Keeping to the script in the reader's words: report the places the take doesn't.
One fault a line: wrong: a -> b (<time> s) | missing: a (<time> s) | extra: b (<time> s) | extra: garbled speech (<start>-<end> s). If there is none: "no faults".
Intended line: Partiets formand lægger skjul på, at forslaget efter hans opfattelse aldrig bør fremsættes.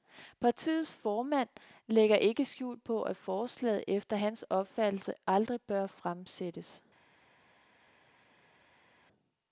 extra: ikke (2.1 s)